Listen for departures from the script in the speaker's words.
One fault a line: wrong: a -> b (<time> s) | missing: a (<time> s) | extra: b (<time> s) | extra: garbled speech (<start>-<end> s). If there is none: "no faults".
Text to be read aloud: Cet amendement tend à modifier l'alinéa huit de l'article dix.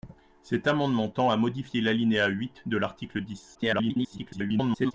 extra: garbled speech (3.5-4.9 s)